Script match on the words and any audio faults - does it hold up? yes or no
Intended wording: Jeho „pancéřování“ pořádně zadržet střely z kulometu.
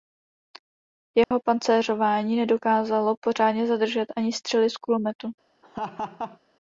no